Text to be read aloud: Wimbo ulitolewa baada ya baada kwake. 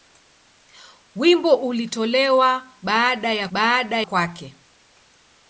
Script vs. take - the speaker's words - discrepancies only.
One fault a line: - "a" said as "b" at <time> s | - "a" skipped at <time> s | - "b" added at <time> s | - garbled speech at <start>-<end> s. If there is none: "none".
none